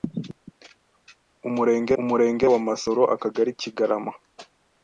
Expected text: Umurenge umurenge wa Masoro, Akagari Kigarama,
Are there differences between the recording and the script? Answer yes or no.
no